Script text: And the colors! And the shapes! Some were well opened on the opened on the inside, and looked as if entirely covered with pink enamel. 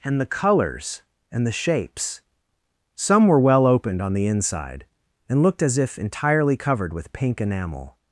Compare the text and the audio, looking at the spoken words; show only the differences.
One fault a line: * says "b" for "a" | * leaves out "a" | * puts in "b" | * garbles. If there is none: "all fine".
* leaves out "opened on the"